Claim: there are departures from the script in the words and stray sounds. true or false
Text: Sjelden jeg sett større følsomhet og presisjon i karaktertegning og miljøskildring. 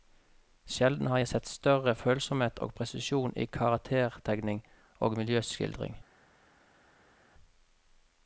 true